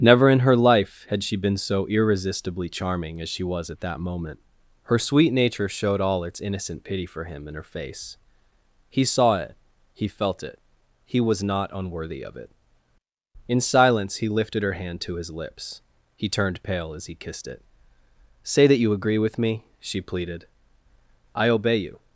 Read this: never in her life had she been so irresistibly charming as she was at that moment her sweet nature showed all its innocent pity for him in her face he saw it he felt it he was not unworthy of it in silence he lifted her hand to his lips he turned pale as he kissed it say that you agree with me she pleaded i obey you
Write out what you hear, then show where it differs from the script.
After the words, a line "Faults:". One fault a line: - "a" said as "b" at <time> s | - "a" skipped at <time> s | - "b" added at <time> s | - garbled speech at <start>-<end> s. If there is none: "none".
never in her life had she been so irresistibly charming as she was at that moment her sweet nature showed all its innocent pity for him in her face he saw it he felt it he was not unworthy of it in silence he lifted her hand to his lips he turned pale as he kissed it say that you agree with me she pleaded i obey you
Faults:
none